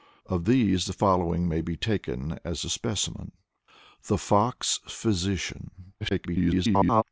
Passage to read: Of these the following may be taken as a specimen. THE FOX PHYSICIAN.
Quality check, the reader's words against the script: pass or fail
fail